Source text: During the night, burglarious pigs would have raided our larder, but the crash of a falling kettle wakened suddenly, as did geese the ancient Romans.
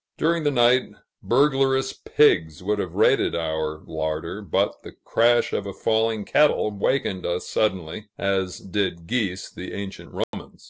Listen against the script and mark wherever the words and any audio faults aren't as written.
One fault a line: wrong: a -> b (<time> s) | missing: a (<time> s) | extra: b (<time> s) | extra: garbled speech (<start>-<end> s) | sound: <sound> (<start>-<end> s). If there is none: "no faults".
extra: us (7.2 s)
sound: dropout (10.2-10.3 s)